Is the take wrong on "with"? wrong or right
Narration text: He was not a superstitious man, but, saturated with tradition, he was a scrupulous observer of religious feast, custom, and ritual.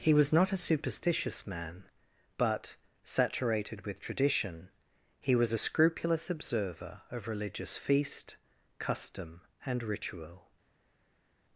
right